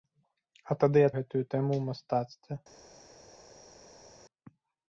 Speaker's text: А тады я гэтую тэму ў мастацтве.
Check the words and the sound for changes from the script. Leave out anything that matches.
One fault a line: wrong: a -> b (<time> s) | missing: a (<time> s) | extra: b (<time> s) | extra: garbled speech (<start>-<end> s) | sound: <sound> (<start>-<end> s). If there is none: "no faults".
no faults